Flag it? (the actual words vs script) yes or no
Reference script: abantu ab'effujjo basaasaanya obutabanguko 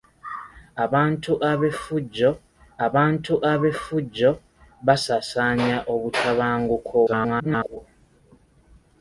yes